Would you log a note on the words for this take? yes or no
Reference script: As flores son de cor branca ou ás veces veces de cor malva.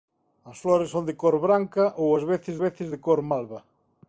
no